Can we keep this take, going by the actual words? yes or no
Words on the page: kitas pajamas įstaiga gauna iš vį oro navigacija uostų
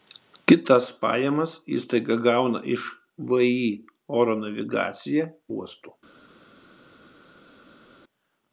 yes